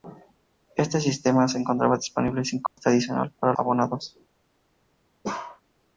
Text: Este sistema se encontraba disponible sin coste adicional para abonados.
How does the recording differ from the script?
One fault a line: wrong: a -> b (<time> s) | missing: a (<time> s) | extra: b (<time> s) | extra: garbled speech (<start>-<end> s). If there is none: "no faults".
no faults